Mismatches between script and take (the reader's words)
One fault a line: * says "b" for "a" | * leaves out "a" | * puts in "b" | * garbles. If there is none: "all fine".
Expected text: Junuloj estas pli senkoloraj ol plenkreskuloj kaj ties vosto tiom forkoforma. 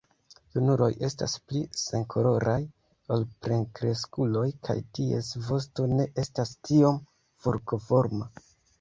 * puts in "ne estas"